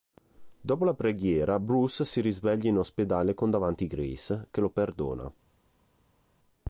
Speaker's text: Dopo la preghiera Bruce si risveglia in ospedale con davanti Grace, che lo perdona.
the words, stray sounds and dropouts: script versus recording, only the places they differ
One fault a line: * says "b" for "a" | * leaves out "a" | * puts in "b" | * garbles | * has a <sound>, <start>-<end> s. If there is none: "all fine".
all fine